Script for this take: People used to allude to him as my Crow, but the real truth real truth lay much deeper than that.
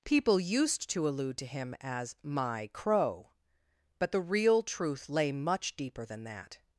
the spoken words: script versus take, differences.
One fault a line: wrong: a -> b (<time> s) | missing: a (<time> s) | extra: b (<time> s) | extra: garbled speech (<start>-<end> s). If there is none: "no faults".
missing: real truth (5.1 s)